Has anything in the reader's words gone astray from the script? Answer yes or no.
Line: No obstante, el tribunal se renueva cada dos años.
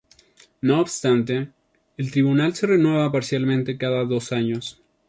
yes